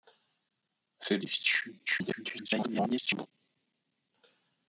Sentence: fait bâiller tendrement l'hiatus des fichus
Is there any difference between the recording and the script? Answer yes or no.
yes